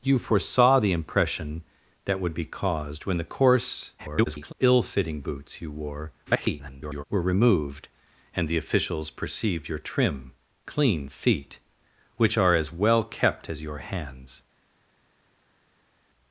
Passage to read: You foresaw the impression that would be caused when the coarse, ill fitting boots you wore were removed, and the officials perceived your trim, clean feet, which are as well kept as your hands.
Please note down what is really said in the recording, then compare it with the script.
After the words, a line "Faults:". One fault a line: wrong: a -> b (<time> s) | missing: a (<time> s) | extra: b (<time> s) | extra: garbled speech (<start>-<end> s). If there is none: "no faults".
You foresaw the impression that would be caused when the coarse, [garbled] ill fitting boots you wore [garbled] were removed, and the officials perceived your trim, clean feet, which are as well kept as your hands.
Faults:
extra: garbled speech (4.0-4.5 s)
extra: garbled speech (6.3-7.0 s)